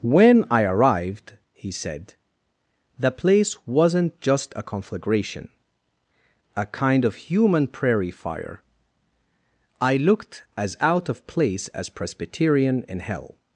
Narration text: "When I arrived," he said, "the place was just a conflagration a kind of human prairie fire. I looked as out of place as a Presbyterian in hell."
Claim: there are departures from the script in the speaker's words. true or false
true